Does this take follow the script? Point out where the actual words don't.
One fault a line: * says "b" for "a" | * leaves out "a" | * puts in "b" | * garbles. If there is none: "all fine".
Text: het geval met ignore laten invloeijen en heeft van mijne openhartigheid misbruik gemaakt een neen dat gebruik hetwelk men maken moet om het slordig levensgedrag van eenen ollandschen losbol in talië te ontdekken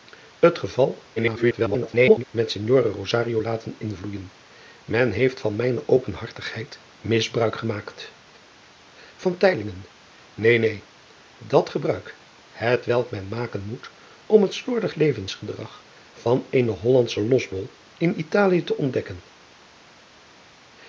* garbles